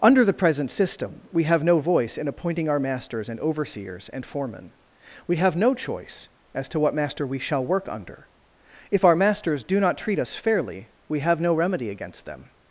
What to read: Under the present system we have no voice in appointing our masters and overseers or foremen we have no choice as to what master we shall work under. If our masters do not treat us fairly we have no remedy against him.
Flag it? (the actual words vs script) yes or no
yes